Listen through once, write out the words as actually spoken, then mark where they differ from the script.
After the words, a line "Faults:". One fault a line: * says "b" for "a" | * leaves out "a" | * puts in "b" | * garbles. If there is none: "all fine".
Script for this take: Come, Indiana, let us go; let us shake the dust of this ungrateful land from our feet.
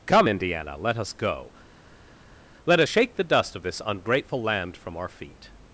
Come, Indiana, let us go; let us shake the dust of this ungrateful land from our feet.
Faults:
all fine